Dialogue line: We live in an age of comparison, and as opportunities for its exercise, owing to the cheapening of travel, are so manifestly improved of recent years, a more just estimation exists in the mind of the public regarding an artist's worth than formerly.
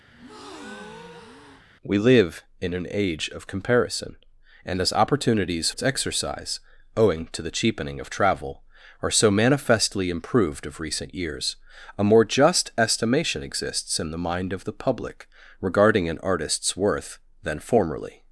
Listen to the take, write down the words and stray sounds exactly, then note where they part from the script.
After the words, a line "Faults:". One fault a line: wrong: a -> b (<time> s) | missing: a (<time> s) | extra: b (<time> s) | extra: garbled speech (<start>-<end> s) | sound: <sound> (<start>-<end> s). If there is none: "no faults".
We live in an age of comparison, and as opportunities its exercise, owing to the cheapening of travel, are so manifestly improved of recent years, a more just estimation exists in the mind of the public regarding an artist's worth than formerly.
Faults:
sound: breath (0.1-1.7 s)
missing: for (5.7 s)